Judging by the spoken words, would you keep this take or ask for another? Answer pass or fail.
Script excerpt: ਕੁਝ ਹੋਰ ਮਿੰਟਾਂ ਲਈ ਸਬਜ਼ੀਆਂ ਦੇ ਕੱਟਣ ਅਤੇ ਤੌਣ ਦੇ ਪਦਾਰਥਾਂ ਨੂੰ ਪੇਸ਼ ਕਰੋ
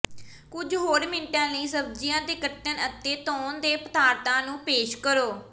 pass